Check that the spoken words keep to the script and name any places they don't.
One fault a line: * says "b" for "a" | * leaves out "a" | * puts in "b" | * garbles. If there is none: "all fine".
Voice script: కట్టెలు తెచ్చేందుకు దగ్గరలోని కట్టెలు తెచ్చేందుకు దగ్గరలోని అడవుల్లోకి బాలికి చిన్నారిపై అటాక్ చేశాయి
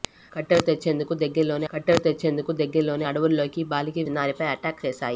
all fine